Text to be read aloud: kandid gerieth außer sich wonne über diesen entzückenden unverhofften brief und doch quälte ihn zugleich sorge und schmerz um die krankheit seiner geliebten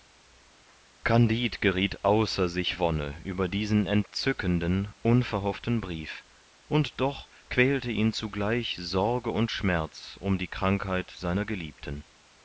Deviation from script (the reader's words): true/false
false